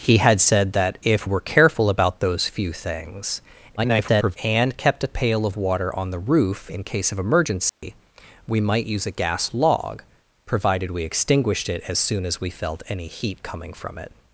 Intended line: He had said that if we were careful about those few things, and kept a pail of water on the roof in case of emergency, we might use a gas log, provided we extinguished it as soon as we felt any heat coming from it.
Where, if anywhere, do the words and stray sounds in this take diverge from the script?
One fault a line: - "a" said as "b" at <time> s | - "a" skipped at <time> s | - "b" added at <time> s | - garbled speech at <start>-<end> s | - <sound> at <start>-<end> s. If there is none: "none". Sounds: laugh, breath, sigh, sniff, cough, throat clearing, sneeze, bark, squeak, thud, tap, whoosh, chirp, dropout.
- "we" skipped at 1.3 s
- garbled speech at 3.8-4.4 s
- dropout at 7.7-7.8 s